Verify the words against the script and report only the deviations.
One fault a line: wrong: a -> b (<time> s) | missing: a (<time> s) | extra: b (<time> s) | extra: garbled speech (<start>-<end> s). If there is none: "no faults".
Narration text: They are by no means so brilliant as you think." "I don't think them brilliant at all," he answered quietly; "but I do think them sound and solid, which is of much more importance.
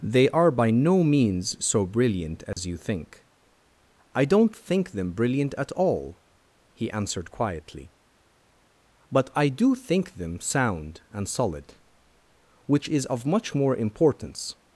no faults